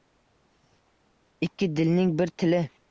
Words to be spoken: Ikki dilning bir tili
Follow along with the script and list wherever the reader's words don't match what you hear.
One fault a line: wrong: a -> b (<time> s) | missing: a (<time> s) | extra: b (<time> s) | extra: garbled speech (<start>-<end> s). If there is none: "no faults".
no faults